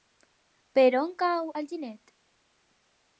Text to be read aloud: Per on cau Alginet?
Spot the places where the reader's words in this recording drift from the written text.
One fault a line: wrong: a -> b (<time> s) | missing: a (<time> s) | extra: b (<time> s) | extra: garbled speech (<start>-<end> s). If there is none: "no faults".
no faults